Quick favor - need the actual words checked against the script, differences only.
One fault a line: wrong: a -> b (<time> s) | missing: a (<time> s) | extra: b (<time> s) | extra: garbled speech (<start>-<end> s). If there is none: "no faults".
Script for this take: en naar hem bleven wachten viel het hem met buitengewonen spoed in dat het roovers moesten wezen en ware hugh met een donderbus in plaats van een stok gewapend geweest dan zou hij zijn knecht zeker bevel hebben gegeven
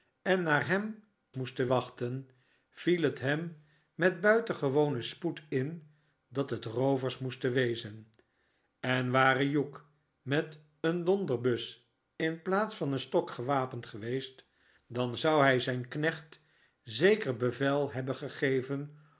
wrong: bleven -> moesten (1.3 s)